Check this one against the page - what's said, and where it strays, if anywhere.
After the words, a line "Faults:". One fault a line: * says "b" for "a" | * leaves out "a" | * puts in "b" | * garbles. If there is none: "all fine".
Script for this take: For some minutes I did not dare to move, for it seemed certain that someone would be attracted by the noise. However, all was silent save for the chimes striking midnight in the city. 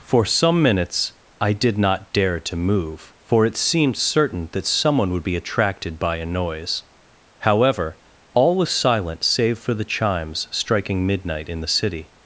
For some minutes I did not dare to move, for it seemed certain that someone would be attracted by a noise. However, all was silent save for the chimes striking midnight in the city.
Faults:
* says "a" for "the"